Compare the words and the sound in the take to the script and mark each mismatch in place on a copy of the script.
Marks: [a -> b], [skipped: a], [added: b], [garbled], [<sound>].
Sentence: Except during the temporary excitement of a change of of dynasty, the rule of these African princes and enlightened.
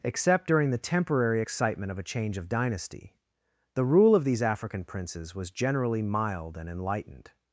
Except during the temporary excitement of a change of [skipped: of] dynasty, the rule of these African princes [added: was generally mild] and enlightened.